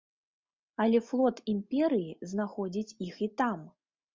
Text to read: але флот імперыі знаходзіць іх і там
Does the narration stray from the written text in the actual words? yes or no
no